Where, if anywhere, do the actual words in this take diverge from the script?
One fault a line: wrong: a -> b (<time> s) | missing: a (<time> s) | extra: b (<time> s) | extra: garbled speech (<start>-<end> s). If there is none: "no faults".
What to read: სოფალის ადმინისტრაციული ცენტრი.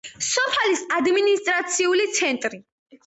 no faults